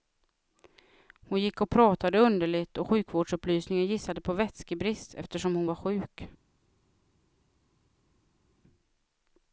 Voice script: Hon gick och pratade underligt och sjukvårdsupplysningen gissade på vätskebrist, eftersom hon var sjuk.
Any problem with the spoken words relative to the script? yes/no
no